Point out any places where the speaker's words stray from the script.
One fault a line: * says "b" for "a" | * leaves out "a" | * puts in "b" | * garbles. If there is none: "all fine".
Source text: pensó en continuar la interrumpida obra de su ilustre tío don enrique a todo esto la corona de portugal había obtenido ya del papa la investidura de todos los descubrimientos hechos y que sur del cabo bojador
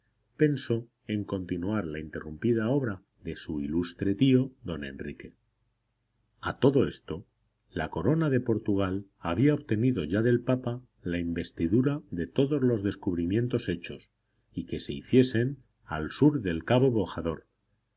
* puts in "se hiciesen al"